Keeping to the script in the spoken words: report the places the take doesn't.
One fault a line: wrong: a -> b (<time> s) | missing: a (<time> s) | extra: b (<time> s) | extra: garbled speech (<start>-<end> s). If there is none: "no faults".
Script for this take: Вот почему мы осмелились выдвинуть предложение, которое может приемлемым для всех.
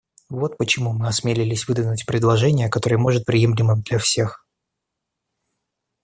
no faults